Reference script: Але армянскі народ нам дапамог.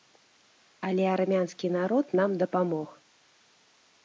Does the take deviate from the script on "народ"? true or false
false